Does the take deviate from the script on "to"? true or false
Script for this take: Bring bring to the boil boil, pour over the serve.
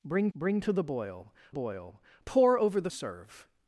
false